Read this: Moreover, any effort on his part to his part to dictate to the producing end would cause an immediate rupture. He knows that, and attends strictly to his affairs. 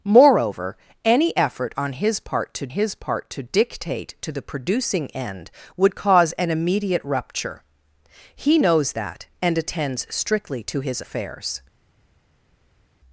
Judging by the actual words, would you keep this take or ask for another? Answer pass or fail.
pass